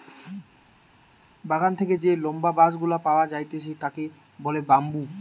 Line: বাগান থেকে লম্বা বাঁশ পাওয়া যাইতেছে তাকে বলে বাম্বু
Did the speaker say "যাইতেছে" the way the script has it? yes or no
yes